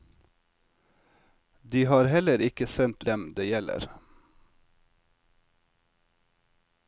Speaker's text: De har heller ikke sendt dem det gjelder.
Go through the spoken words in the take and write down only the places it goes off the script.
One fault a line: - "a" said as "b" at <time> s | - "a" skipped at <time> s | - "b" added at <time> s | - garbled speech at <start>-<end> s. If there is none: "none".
none